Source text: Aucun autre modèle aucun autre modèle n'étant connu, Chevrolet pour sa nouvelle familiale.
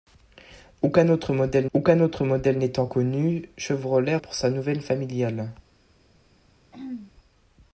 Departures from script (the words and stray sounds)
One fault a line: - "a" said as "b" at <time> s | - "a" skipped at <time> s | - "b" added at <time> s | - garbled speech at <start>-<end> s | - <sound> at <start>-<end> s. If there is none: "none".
- throat clearing at 6.7-7.1 s